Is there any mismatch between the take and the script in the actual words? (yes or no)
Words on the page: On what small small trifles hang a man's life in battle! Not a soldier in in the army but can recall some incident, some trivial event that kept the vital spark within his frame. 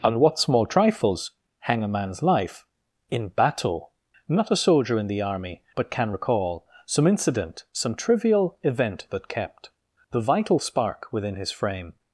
yes